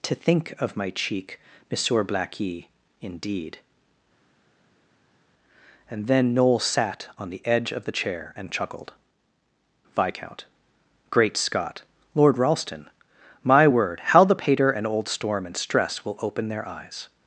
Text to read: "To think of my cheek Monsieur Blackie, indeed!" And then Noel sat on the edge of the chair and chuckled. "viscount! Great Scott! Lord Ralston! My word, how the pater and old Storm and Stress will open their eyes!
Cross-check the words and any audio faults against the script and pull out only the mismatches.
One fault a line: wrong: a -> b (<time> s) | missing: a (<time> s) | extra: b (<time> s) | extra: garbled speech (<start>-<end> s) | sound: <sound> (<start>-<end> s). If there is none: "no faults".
no faults